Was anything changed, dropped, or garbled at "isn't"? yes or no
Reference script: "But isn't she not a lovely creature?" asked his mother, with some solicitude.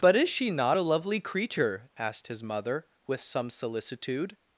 yes